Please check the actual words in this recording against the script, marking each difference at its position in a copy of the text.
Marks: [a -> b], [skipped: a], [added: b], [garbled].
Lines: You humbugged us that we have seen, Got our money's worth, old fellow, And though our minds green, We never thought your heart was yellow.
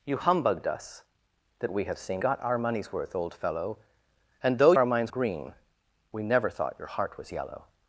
You humbugged us that we have seen, Got our money's worth, old fellow, And though our minds green, We never thought your heart was yellow.